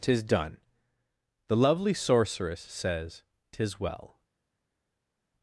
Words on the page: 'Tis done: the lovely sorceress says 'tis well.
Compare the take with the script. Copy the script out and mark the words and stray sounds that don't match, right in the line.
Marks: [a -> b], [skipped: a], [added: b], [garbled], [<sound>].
'Tis done: the lovely sorceress says 'tis well.